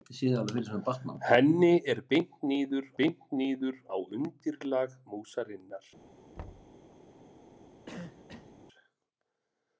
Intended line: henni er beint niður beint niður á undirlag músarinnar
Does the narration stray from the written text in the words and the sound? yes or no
yes